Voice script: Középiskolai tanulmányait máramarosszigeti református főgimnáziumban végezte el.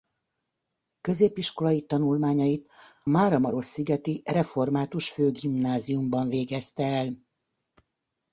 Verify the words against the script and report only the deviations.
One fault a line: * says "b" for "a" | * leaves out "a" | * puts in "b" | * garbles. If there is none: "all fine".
all fine